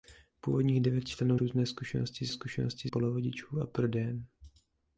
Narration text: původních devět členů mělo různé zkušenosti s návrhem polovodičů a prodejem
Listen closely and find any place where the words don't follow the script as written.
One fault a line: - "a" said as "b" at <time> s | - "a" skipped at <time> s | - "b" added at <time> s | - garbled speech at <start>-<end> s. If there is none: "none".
- "mělo" skipped at 1.4 s
- "návrhem" said as "zkušenosti" at 2.3 s